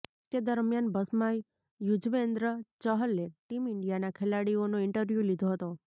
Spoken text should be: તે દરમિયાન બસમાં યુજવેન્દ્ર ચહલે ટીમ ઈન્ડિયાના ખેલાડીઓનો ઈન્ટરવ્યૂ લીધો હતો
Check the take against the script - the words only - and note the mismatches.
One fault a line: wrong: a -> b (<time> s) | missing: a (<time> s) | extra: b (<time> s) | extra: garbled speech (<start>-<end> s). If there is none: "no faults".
no faults